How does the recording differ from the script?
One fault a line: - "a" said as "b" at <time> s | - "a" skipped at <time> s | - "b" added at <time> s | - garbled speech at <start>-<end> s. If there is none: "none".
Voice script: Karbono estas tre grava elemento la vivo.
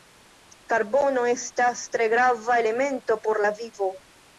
- "por" added at 3.3 s